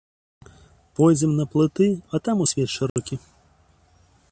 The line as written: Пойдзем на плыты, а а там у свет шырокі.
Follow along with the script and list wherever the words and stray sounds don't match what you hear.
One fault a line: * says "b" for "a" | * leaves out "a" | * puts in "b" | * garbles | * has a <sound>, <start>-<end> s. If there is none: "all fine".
* leaves out "а"
* has a dropout, 2.9-3.0 s